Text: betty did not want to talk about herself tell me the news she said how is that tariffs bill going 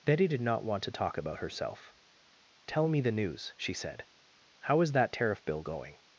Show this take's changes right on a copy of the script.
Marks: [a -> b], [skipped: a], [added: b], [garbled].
betty did not want to talk about herself tell me the news she said how is that [tariffs -> tariff] bill going